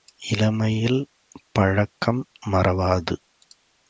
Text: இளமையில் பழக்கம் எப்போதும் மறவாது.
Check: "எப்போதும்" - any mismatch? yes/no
yes